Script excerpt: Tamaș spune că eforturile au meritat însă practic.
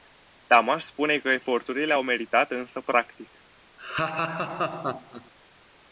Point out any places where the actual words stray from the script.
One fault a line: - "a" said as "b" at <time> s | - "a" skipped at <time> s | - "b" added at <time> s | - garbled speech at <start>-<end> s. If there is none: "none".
none